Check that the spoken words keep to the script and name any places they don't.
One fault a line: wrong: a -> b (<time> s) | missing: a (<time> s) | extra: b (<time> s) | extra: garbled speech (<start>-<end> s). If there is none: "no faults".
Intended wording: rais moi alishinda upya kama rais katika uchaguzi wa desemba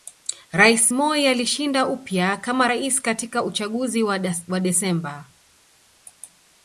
no faults